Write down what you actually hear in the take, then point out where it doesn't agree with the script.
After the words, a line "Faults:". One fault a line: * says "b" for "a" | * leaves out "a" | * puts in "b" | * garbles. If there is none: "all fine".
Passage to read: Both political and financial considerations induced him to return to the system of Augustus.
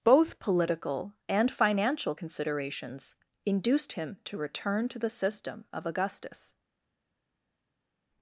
Both political and financial considerations induced him to return to the system of Augustus.
Faults:
all fine